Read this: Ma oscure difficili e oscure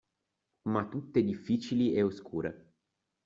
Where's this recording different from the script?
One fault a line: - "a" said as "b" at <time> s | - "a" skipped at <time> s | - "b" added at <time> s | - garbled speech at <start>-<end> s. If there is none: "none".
- "oscure" said as "tutte" at 0.9 s